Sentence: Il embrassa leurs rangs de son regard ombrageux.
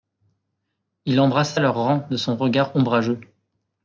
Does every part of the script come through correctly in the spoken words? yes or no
yes